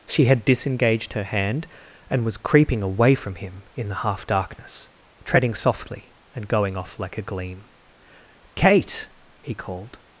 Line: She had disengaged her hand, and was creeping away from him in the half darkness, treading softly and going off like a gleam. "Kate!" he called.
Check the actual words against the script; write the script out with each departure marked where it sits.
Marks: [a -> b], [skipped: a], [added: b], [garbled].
She had disengaged her hand, and was creeping away from him in the half darkness, treading softly and going off like a gleam. "Kate!" he called.